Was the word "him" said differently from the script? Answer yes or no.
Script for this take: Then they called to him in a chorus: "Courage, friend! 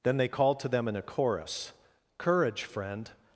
yes